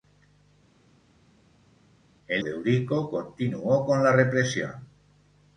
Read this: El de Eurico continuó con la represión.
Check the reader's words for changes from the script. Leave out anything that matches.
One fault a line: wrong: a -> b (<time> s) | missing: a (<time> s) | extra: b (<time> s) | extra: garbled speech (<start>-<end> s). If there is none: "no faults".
no faults